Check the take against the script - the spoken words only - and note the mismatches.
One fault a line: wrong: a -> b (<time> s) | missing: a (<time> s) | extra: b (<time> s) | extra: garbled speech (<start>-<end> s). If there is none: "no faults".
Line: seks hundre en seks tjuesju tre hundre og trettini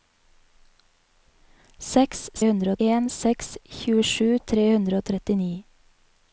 no faults